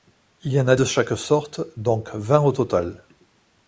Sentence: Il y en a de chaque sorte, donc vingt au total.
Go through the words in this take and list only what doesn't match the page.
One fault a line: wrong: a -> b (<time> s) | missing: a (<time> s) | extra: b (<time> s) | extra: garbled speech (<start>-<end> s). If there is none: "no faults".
no faults